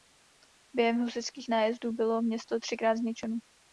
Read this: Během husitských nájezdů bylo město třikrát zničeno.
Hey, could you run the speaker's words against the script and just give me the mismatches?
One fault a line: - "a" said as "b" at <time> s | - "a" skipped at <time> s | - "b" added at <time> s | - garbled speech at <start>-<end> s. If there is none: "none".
none